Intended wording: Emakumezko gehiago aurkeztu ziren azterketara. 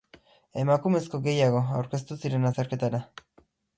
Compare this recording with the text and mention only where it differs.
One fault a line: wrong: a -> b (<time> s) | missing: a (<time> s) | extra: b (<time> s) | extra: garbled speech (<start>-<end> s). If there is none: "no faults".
no faults